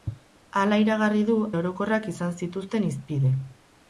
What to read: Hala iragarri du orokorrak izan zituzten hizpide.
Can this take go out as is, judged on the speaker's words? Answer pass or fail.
pass